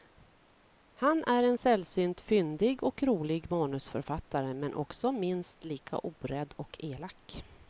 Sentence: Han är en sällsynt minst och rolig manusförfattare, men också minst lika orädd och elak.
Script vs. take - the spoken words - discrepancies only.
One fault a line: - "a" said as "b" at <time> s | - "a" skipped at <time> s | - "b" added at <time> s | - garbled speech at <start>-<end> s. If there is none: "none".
- "minst" said as "fyndig" at 2.2 s